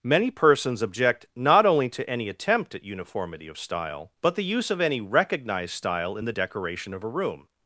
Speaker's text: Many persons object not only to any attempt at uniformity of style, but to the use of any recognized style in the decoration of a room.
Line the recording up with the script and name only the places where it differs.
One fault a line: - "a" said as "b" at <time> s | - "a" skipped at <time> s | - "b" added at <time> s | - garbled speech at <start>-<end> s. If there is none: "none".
- "to" skipped at 4.3 s